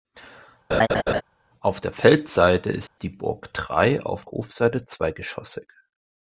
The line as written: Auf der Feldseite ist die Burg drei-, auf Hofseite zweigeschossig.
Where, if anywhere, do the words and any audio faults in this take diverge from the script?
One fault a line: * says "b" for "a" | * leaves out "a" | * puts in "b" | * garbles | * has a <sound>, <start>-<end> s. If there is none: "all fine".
* has a laugh, 0.7-1.2 s
* has a dropout, 2.9-3.0 s